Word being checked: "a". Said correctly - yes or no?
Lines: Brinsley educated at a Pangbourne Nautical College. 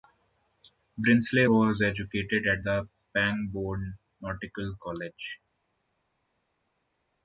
no